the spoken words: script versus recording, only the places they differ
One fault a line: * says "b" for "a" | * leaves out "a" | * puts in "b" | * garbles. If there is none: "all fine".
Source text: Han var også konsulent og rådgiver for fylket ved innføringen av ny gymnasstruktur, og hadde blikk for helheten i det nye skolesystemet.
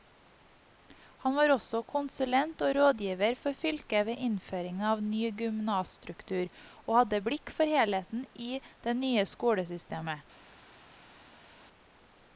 all fine